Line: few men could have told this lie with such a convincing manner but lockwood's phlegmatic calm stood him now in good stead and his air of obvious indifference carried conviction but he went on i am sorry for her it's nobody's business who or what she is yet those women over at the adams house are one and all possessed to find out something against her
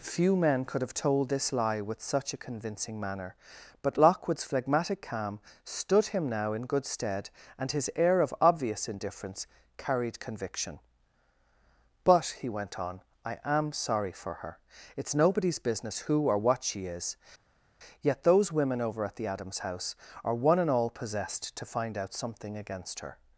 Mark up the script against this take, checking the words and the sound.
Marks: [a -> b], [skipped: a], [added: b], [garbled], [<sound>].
few men could have told this lie with such a convincing manner but lockwood's phlegmatic calm stood him now in good stead and his air of obvious indifference carried conviction but he went on i am sorry for her it's nobody's business who or what she is yet those women over at the adams house are one and all possessed to find out something against her